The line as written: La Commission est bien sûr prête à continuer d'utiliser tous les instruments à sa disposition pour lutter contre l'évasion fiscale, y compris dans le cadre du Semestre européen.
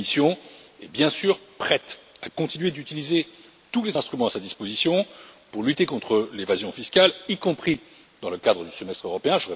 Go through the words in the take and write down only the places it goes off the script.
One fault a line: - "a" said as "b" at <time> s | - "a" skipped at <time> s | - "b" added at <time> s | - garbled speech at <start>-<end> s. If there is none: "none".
none